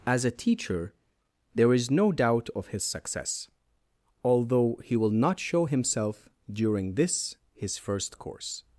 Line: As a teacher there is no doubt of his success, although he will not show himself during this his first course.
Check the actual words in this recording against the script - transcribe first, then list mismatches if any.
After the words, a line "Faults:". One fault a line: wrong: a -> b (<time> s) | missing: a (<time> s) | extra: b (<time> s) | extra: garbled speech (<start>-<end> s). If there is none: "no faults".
As a teacher there is no doubt of his success, although he will not show himself during this his first course.
Faults:
no faults